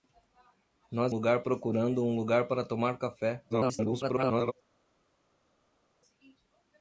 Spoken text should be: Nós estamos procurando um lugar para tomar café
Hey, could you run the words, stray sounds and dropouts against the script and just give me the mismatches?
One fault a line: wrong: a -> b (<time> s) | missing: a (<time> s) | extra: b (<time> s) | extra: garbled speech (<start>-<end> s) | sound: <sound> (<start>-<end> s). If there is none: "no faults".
wrong: estamos -> lugar (1.1 s)
extra: garbled speech (3.5-4.5 s)